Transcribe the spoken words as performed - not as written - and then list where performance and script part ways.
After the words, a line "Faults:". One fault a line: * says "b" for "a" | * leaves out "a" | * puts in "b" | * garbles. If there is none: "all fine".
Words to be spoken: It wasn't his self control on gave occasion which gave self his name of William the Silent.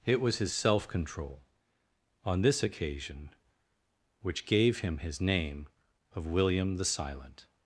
It was his self control on this occasion which gave him his name of William the Silent.
Faults:
* says "was" for "wasn't"
* says "this" for "gave"
* says "him" for "self"